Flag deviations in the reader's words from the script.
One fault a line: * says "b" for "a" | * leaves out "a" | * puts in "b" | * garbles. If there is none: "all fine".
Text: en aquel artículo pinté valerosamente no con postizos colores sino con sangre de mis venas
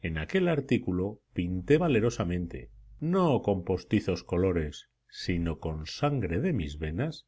all fine